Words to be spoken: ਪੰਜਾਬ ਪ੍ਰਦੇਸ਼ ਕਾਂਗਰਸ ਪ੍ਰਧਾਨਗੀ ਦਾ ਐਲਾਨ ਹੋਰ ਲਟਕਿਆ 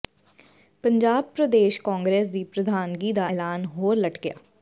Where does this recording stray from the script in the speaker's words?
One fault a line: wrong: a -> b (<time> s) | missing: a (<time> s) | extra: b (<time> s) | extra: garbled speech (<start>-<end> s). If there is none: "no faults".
extra: ਦੀ (2.3 s)